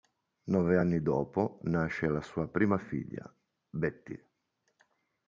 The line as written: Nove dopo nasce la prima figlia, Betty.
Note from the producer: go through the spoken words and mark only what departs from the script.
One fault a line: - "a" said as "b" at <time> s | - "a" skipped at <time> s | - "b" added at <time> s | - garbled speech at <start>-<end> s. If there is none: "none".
- "anni" added at 0.8 s
- "sua" added at 2.2 s